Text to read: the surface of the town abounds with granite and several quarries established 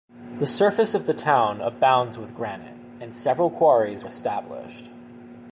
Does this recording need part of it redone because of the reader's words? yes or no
no